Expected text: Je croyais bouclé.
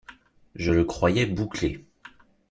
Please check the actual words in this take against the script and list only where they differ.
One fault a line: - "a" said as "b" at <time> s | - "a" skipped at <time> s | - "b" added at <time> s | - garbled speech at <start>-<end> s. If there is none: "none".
- "le" added at 0.7 s